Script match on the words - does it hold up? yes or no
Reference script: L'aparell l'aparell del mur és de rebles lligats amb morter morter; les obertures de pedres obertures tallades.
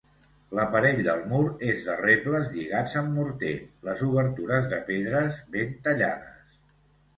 no